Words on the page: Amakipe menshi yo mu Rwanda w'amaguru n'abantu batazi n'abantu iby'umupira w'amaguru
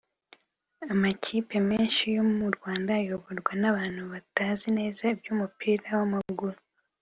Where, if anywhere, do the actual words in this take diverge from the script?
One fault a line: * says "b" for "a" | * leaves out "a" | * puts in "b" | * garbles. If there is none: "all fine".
* says "ayoborwa" for "w'amaguru"
* says "neza" for "n'abantu"